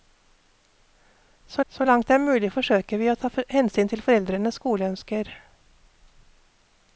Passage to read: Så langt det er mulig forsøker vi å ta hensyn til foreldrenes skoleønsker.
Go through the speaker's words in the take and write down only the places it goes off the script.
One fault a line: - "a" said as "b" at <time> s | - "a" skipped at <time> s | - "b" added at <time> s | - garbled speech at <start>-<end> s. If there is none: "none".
- "så" added at 1.7 s